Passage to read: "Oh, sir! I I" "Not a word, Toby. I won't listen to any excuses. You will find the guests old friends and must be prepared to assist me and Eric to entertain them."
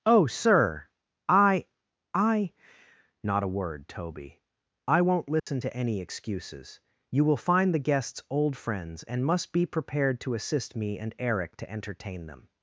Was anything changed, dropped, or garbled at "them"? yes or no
no